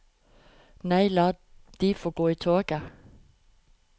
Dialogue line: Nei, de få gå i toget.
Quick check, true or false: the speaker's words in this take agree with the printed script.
false